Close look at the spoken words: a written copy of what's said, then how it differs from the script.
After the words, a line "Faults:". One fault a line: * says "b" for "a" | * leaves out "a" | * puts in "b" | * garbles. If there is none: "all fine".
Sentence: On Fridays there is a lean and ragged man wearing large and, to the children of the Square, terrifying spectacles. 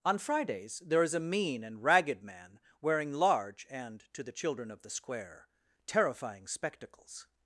On Fridays there is a mean and ragged man wearing large and, to the children of the Square, terrifying spectacles.
Faults:
* says "mean" for "lean"